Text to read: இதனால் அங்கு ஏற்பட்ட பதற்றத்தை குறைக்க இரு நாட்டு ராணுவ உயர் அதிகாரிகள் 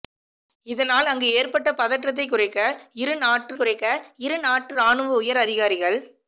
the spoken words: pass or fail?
fail